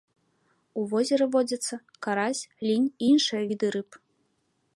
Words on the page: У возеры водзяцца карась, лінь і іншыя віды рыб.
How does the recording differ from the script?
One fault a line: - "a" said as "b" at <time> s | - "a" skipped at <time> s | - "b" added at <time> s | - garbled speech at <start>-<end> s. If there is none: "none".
none